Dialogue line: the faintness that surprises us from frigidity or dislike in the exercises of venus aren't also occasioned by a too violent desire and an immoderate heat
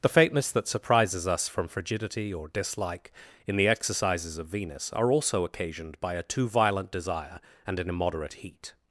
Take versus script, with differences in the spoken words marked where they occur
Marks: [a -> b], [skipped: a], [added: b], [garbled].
the faintness that surprises us from frigidity or dislike in the exercises of venus [aren't -> are] also occasioned by a too violent desire and an immoderate heat